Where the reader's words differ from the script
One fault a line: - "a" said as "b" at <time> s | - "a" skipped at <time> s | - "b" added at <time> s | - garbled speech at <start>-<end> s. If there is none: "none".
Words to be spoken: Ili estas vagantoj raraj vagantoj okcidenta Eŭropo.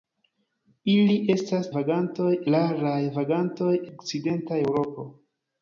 none